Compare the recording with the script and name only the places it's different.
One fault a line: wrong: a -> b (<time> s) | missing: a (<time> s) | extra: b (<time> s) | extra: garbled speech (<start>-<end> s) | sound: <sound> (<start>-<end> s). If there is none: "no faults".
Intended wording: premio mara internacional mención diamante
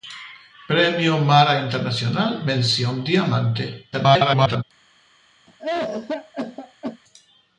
extra: garbled speech (3.9-4.6 s)
sound: cough (5.5-7.0 s)